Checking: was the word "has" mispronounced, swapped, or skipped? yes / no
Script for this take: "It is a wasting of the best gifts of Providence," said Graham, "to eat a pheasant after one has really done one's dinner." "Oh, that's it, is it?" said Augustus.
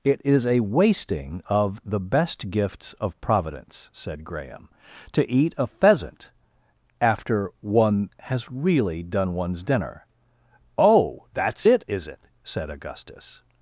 no